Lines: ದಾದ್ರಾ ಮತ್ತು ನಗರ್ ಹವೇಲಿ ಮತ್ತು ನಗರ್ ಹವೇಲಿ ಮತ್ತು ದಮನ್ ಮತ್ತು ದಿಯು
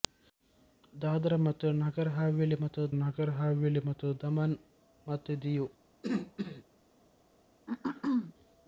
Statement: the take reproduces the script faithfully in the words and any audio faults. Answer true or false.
false